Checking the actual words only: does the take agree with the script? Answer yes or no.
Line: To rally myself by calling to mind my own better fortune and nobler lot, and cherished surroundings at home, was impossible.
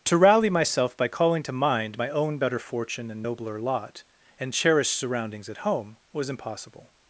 yes